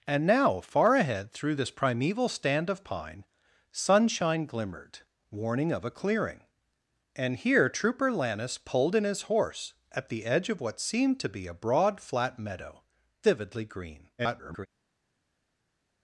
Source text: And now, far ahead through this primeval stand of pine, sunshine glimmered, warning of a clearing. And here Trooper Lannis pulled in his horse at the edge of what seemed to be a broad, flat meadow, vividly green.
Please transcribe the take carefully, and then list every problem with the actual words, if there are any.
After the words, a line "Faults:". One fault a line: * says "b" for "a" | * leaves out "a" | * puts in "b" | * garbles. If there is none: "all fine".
And now, far ahead through this primeval stand of pine, sunshine glimmered, warning of a clearing. And here Trooper Lannis pulled in his horse at the edge of what seemed to be a broad, flat meadow, vividly green. [garbled]
Faults:
* garbles